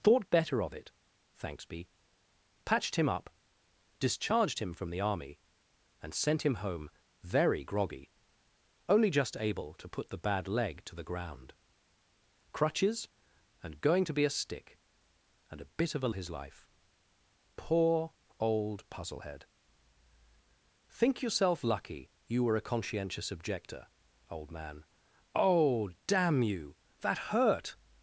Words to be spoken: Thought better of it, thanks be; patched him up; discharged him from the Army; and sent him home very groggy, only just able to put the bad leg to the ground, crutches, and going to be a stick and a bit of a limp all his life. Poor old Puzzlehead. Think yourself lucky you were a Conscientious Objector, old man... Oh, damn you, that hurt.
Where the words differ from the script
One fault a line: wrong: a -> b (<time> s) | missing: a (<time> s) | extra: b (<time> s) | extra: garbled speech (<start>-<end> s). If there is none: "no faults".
missing: limp all (16.1 s)